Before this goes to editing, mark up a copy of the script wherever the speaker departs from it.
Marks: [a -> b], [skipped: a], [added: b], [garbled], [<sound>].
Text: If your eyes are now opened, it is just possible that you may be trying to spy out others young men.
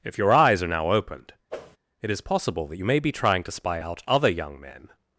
If your eyes are now opened, [whoosh] it is [skipped: just] possible that you may be trying to spy out [others -> other] young men.